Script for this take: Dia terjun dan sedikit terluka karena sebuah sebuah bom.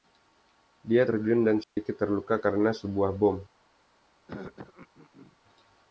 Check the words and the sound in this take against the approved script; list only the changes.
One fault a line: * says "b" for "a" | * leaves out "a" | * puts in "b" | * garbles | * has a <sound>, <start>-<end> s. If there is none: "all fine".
* has a dropout, 1.6-1.8 s
* leaves out "sebuah"
* has a throat clearing, 4.3-5.4 s